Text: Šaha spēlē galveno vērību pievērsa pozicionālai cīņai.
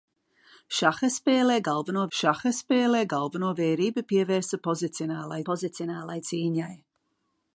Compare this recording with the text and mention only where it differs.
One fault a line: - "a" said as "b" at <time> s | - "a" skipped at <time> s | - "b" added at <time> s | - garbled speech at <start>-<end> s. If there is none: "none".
- "šaha spēlē galveno" added at 2.2 s
- "pozicionālai" added at 5.5 s